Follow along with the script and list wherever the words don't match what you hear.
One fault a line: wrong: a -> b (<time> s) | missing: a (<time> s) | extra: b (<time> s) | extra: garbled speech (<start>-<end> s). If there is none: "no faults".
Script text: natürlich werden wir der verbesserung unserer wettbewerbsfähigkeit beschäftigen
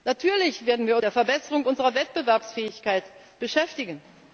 no faults